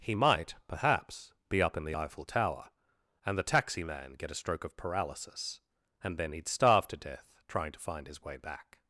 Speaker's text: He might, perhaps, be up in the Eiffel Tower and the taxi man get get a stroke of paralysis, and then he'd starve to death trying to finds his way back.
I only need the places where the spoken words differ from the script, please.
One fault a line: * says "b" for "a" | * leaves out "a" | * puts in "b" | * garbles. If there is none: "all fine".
* leaves out "get"
* says "find" for "finds"